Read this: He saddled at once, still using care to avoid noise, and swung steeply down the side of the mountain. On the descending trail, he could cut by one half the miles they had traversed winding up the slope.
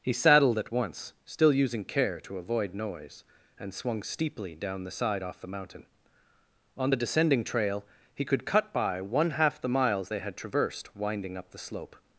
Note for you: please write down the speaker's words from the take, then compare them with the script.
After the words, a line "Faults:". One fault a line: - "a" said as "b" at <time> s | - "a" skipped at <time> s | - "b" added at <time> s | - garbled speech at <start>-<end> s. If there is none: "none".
He saddled at once, still using care to avoid noise, and swung steeply down the side off the mountain. On the descending trail, he could cut by one half the miles they had traversed winding up the slope.
Faults:
- "of" said as "off" at 5.2 s